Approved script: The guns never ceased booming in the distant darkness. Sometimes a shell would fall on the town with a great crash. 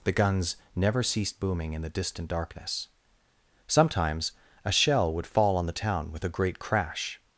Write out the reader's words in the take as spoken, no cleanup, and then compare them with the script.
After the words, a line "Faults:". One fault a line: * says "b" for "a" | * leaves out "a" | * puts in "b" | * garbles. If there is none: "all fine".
The guns never ceased booming in the distant darkness. Sometimes a shell would fall on the town with a great crash.
Faults:
all fine